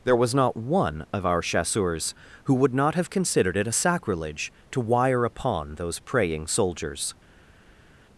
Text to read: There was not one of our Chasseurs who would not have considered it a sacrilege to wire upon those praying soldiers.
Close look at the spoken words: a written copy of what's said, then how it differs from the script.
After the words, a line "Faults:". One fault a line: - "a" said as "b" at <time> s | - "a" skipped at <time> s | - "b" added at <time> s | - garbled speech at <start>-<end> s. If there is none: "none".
There was not one of our Chasseurs who would not have considered it a sacrilege to wire upon those praying soldiers.
Faults:
none